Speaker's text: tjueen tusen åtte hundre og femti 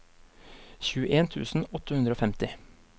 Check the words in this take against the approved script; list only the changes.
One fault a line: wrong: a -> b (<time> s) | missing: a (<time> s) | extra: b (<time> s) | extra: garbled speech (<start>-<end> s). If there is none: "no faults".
no faults